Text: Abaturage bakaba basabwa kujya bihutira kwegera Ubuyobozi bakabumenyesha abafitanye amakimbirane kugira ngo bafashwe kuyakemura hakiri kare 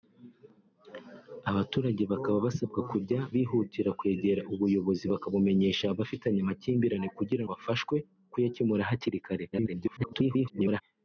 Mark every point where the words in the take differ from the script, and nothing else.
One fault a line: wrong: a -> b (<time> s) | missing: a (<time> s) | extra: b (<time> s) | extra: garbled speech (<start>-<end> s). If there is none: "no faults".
missing: ngo (7.4 s)
extra: garbled speech (9.5-10.8 s)